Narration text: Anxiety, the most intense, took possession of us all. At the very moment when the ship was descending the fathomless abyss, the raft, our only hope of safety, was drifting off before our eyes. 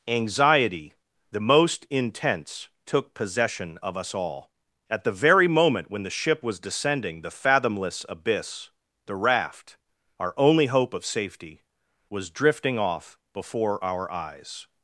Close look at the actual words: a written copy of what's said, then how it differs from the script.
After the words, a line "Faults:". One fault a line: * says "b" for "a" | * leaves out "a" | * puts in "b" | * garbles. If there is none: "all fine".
Anxiety, the most intense, took possession of us all. At the very moment when the ship was descending the fathomless abyss, the raft, our only hope of safety, was drifting off before our eyes.
Faults:
all fine